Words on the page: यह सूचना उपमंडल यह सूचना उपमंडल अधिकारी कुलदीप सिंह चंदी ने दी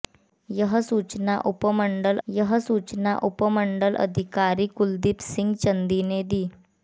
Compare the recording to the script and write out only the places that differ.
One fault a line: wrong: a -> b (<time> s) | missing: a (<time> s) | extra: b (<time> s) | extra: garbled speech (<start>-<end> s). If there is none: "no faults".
no faults